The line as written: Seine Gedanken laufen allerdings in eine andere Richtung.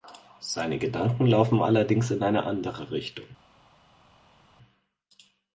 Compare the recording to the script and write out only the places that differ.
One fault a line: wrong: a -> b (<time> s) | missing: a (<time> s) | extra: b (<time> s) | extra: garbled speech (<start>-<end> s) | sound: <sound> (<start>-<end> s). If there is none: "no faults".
no faults